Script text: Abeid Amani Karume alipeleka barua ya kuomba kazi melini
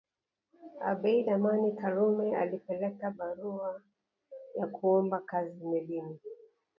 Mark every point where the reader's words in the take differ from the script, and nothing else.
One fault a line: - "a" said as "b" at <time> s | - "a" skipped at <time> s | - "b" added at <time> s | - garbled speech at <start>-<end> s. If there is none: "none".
none